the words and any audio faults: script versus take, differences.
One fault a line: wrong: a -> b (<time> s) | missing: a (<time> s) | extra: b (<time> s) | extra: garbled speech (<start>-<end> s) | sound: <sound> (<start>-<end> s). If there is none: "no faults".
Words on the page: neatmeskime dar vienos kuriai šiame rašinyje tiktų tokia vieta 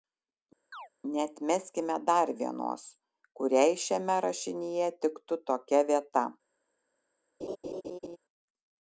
sound: chirp (0.7-0.9 s)
sound: laugh (7.4-8.2 s)